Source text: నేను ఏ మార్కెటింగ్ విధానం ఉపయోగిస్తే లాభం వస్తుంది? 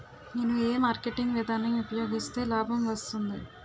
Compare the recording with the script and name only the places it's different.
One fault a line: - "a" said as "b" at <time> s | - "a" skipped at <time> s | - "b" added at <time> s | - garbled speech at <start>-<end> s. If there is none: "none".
none